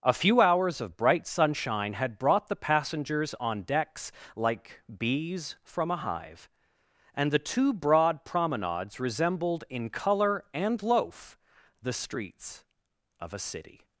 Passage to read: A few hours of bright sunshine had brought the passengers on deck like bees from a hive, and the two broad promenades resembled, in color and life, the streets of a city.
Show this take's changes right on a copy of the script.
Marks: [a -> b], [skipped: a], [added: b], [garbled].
A few hours of bright sunshine had brought the passengers on [deck -> decks] like bees from a hive, and the two broad promenades resembled, in color and [life, -> loaf] the streets of a city.